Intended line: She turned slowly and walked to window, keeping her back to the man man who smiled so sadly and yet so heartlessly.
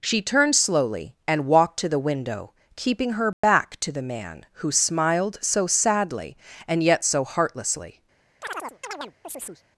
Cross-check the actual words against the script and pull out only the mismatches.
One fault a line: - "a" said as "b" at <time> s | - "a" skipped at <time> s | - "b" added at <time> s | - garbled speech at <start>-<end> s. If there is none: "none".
- "the" added at 1.9 s
- "man" skipped at 4.5 s